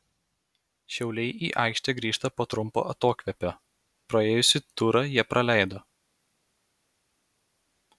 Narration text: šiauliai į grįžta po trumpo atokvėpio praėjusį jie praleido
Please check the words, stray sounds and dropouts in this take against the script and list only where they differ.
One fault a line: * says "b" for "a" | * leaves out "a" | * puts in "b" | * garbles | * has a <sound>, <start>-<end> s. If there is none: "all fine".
* puts in "aikštę"
* puts in "turą"